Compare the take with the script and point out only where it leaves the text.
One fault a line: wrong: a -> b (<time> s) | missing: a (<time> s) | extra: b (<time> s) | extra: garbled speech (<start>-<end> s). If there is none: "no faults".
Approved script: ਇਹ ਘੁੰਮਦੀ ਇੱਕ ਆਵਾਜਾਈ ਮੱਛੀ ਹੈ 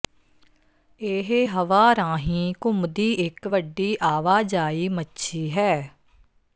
extra: ਹਵਾ ਰਾਹੀਂ (1.5 s)
extra: ਵੱਡੀ (3.5 s)